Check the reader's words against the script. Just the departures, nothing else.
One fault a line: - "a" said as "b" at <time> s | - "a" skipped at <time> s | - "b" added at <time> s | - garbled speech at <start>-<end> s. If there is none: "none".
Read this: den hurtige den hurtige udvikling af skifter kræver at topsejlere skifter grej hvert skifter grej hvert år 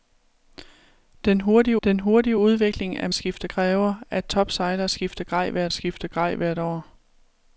none